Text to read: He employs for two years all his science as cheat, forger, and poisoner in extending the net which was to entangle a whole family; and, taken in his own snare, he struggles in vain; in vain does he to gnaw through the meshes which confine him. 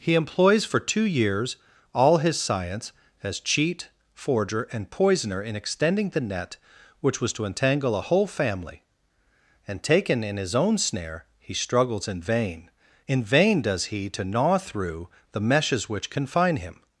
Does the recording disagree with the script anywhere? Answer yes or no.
no